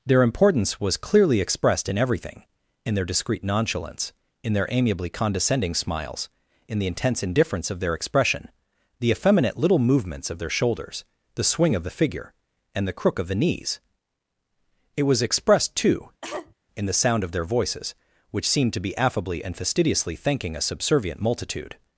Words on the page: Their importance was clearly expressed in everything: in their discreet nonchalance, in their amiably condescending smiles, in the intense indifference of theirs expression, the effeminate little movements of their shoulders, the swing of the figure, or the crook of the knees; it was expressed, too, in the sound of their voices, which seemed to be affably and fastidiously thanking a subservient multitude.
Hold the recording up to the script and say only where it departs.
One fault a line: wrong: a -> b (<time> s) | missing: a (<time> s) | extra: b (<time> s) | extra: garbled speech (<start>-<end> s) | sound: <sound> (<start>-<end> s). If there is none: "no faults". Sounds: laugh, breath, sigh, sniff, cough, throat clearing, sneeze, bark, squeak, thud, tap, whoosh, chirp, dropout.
wrong: theirs -> their (7.8 s)
wrong: or -> and (12.7 s)
sound: cough (16.2-16.5 s)